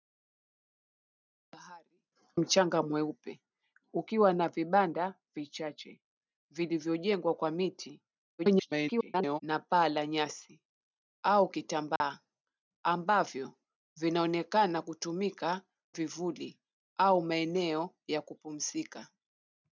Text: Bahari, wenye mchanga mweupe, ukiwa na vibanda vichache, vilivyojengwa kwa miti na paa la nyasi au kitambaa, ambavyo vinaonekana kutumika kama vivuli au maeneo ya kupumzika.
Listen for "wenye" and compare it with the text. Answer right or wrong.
wrong